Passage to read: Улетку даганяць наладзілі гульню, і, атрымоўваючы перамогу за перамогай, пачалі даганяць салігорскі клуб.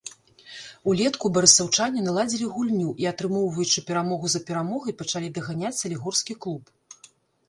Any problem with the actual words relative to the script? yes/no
yes